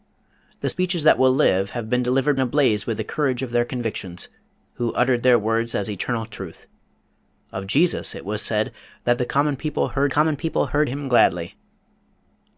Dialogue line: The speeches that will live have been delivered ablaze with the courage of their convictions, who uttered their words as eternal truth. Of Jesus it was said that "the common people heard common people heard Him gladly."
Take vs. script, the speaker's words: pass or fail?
pass